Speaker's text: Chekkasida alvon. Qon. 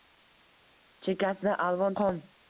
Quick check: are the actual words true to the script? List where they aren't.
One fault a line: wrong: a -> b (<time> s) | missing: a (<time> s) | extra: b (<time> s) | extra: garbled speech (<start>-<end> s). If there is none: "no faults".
no faults